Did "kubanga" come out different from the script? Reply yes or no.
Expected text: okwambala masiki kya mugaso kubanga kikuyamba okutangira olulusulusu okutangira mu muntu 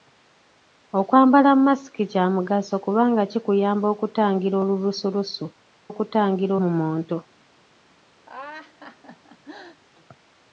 no